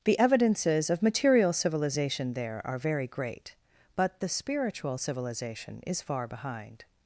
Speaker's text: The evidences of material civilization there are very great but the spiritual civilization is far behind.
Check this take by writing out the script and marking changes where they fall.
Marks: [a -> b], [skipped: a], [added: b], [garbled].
The evidences of material civilization there are very great but the spiritual civilization is far behind.